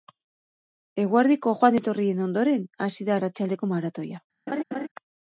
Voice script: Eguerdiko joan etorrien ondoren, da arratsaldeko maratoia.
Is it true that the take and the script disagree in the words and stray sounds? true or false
true